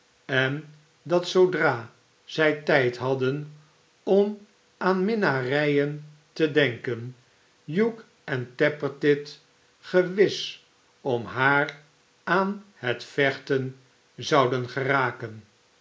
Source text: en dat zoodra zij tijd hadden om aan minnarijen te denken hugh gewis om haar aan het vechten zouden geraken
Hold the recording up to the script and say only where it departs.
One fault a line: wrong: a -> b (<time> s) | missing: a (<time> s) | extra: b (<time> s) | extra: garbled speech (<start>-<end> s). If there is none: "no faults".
extra: en tappertit (8.2 s)